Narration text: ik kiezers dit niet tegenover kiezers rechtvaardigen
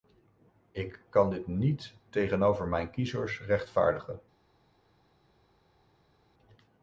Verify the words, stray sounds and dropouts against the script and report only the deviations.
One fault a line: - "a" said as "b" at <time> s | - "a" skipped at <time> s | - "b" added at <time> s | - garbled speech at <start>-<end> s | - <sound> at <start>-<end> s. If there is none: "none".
- "kiezers" said as "kan" at 1.1 s
- "mijn" added at 2.7 s